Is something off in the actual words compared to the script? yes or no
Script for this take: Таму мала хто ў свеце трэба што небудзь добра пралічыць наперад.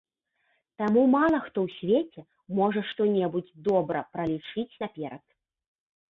yes